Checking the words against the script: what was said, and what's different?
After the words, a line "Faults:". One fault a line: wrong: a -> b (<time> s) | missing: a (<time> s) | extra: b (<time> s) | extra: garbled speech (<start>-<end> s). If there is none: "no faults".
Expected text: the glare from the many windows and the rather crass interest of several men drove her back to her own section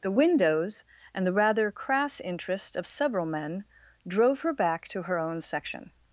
the windows and the rather crass interest of several men drove her back to her own section
Faults:
missing: glare from the many (0.2 s)